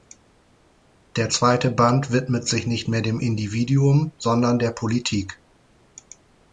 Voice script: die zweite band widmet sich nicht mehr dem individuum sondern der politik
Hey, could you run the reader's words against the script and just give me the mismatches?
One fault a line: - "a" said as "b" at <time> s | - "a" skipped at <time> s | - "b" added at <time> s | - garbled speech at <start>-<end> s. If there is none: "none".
- "die" said as "der" at 1.1 s